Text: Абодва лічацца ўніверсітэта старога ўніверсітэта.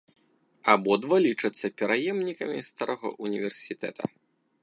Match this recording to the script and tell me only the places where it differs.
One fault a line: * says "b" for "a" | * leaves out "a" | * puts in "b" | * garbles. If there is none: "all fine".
* says "пераемнікамі" for "ўніверсітэта"